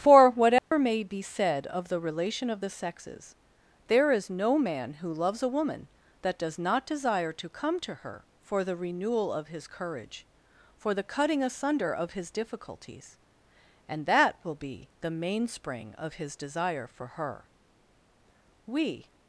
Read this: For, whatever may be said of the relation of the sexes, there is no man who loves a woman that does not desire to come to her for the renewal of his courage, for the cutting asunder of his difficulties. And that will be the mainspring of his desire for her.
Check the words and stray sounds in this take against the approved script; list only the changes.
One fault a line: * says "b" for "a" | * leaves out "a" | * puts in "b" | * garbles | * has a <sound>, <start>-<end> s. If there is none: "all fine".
* has a dropout, 0.6-0.7 s
* puts in "We"